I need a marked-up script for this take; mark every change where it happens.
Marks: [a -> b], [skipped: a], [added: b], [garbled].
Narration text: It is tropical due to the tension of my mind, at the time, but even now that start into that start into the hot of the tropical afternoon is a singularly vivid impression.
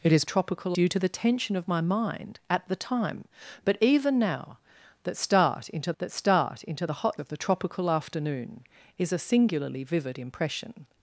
It is tropical due to the tension of my mind, at the time, but even now that start into that start into the hot of the tropical afternoon is a singularly vivid impression.